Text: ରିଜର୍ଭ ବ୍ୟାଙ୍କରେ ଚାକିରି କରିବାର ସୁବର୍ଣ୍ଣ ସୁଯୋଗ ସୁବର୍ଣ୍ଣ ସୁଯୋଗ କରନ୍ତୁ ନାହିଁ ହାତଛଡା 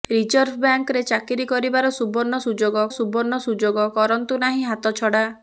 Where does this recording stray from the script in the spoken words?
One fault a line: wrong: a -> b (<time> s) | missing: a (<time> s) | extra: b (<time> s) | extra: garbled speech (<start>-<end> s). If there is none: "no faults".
no faults